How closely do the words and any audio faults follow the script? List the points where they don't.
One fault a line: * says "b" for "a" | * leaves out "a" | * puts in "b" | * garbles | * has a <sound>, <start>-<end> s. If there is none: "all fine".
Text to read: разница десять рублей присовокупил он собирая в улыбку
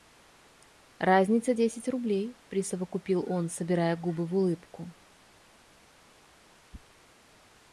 * puts in "губы"